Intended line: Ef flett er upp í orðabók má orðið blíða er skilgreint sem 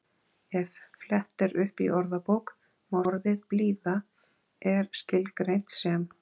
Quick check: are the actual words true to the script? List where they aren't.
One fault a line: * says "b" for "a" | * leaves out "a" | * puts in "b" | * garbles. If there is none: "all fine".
all fine